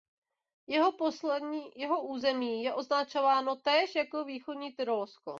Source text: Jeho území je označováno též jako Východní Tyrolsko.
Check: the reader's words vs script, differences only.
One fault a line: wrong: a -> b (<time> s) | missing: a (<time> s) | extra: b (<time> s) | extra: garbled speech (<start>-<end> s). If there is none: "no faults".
no faults